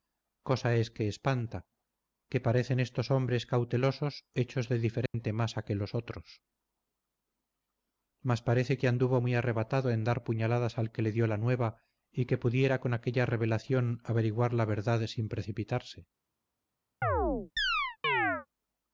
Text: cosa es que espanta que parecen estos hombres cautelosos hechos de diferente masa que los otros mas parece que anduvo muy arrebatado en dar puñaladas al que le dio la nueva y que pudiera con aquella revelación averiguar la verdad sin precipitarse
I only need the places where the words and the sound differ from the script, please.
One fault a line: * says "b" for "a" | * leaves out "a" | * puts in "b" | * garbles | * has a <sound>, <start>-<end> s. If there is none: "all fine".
* has a dropout, 5.1-5.1 s
* has a chirp, 17.0-18.5 s